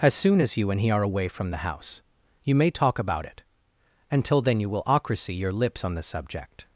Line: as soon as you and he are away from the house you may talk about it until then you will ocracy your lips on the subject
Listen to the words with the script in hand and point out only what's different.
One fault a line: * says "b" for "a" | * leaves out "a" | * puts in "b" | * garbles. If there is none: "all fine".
all fine